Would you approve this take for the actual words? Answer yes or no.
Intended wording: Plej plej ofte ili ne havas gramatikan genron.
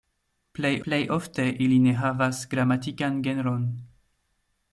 yes